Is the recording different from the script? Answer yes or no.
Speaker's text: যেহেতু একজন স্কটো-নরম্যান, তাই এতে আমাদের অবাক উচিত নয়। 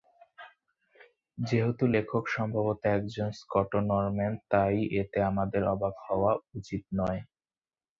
yes